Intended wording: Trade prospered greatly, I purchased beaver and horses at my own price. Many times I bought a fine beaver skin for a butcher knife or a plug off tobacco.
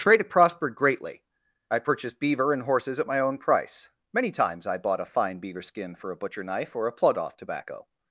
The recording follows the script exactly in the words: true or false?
true